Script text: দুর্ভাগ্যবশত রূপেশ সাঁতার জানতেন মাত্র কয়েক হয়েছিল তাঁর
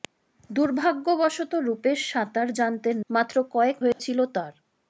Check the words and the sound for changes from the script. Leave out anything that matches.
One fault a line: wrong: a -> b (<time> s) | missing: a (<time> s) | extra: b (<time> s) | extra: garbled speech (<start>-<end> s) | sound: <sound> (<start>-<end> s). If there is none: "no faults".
sound: dropout (3.9-4.0 s)